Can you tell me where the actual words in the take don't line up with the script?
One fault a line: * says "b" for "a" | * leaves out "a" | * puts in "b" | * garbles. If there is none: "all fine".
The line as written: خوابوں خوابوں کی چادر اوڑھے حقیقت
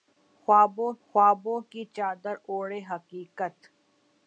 all fine